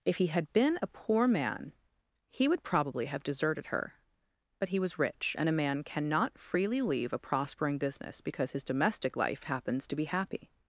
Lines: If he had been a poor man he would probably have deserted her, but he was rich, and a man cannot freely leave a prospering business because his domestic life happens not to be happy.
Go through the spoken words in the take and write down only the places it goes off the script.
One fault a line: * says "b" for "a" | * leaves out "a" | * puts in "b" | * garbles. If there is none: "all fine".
* leaves out "not"